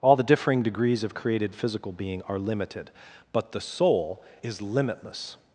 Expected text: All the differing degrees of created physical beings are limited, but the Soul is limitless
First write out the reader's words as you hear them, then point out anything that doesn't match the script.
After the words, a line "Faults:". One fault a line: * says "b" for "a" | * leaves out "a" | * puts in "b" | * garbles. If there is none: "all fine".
All the differing degrees of created physical being are limited, but the Soul is limitless
Faults:
* says "being" for "beings"